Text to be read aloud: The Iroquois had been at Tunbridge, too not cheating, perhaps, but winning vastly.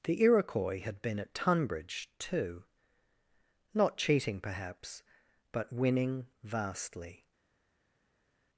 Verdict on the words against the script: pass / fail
pass